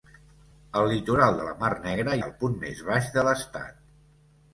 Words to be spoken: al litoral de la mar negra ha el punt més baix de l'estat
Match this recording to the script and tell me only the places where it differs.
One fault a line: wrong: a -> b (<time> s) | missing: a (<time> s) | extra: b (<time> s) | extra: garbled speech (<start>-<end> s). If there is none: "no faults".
no faults